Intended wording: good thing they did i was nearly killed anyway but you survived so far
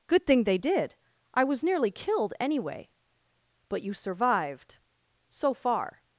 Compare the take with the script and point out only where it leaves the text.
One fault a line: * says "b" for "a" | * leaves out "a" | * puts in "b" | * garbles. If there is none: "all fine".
all fine